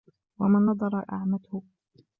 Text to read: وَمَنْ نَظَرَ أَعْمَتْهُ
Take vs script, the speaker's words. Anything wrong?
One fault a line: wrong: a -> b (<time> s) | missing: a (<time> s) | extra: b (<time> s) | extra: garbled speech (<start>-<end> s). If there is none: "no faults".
no faults